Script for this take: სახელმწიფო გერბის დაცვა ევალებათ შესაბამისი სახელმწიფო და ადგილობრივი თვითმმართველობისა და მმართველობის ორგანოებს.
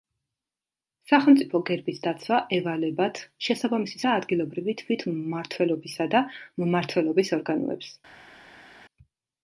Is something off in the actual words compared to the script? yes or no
yes